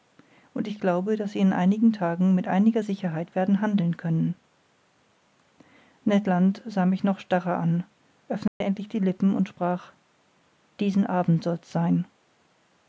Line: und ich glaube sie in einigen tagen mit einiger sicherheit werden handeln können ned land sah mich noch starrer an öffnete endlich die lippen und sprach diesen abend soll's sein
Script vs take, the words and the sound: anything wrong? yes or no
yes